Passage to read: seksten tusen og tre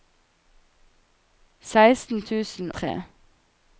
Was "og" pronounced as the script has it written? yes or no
no